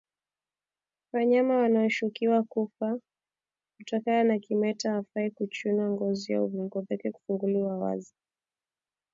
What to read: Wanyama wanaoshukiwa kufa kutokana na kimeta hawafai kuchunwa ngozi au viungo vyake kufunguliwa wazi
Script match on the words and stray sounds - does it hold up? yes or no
yes